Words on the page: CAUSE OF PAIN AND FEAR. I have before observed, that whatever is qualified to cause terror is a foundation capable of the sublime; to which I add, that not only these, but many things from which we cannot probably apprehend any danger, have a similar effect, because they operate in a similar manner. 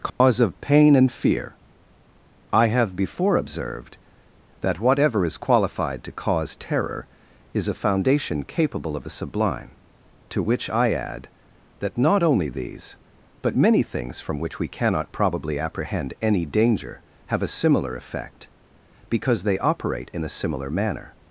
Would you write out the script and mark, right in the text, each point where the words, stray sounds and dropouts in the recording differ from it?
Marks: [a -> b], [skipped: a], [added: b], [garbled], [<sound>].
CAUSE [dropout] OF PAIN AND FEAR. I have before observed, that whatever is qualified to cause terror is a foundation capable of the sublime; to which I add, that not only these, but many things from which we cannot probably apprehend any danger, have a similar effect, because they operate in a similar manner.